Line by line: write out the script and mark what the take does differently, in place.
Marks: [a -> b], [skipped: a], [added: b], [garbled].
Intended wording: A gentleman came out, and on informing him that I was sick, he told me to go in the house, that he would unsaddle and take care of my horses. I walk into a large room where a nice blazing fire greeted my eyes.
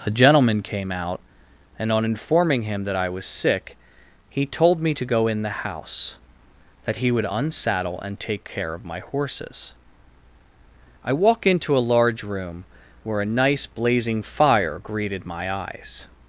A gentleman came out, and on informing him that I was sick, he told me to go in the house, that he would unsaddle and take care of my horses. I walk into a large room where a nice blazing fire greeted my eyes.